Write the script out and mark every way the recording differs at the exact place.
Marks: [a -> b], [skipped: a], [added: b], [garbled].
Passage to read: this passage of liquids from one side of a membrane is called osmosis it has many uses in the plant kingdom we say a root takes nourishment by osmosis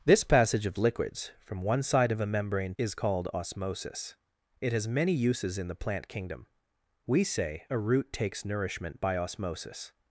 this passage of liquids from one side of a membrane is called osmosis it has many uses in the plant kingdom we say a root takes nourishment by osmosis